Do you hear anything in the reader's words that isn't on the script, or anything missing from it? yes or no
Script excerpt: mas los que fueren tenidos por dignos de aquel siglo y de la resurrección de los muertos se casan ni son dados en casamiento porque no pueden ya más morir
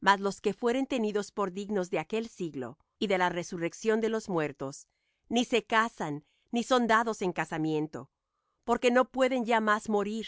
yes